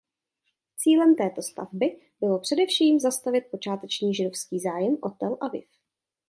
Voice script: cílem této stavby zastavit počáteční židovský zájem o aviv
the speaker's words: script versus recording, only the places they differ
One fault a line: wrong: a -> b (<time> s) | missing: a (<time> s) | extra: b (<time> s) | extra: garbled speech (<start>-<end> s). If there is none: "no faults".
extra: bylo především (2.2 s)
extra: tel (5.1 s)